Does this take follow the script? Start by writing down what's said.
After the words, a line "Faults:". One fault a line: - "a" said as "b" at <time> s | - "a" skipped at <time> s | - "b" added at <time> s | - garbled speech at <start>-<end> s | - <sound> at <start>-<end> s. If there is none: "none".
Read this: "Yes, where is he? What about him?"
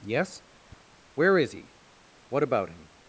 "Yes, where is he? What about him?"
Faults:
- tap at 0.7-0.8 s